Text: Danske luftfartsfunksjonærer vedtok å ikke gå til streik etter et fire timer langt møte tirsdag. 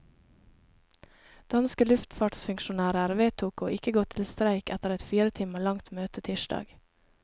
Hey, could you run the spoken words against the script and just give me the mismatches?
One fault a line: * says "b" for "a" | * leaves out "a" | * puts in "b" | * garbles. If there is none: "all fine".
all fine